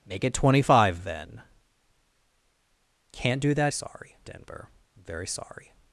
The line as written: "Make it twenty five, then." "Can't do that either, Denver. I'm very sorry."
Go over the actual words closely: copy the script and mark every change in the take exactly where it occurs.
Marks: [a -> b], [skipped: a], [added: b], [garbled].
"Make it twenty five, then." "Can't do that [either, -> sorry] Denver. I'm very sorry."